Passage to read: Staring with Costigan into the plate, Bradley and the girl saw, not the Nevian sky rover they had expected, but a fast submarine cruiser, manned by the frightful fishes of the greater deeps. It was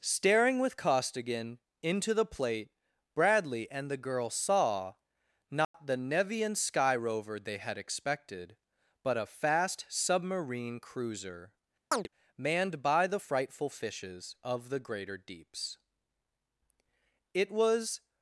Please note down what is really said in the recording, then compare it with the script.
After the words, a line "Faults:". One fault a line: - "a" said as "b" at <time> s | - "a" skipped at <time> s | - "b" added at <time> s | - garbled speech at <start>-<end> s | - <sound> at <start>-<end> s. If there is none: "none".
Staring with Costigan into the plate, Bradley and the girl saw, not the Nevian sky rover they had expected, but a fast submarine cruiser, manned by the frightful fishes of the greater deeps. It was
Faults:
- dropout at 5.6-5.7 s
- chirp at 11.9-12.1 s